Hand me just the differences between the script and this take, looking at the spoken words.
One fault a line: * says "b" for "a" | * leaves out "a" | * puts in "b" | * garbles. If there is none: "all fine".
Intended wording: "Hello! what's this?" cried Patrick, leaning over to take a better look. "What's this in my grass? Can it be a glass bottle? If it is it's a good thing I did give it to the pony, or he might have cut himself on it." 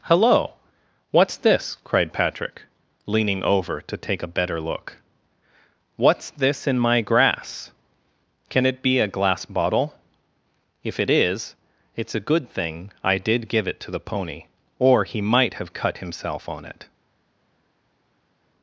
all fine